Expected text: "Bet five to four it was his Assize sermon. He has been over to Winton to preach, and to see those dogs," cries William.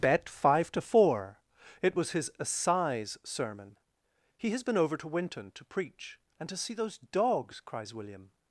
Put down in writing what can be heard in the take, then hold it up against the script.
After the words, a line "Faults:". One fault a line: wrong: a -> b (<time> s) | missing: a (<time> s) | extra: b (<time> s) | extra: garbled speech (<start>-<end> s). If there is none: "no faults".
"Bet five to four it was his Assize sermon. He has been over to Winton to preach, and to see those dogs," cries William.
Faults:
no faults